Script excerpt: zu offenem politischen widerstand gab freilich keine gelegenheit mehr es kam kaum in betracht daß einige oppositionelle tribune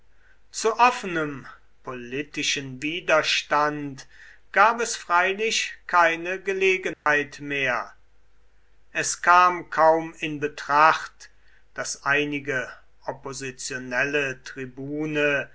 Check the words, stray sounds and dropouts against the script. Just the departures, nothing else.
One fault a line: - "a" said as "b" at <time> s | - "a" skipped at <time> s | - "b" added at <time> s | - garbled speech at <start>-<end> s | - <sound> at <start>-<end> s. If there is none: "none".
- "es" added at 4.8 s
- dropout at 6.9-7.1 s